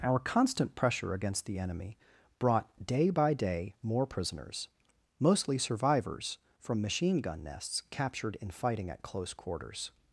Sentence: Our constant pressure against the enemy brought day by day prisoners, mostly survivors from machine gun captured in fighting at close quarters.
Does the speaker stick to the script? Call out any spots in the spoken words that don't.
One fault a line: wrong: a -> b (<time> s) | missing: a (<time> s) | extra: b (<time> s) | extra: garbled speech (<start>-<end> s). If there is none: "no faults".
extra: more (3.8 s)
extra: nests (7.4 s)